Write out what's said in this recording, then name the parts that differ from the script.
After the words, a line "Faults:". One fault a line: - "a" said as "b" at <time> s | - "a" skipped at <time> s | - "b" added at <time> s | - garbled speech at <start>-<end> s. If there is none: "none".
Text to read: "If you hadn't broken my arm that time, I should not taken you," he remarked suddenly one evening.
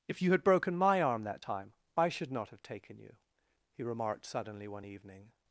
"If you had broken my arm that time, I should not have taken you," he remarked suddenly one evening.
Faults:
- "hadn't" said as "had" at 0.3 s
- "have" added at 2.5 s